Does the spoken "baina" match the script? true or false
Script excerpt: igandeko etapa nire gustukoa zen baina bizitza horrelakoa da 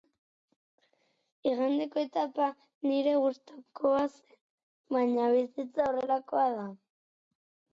true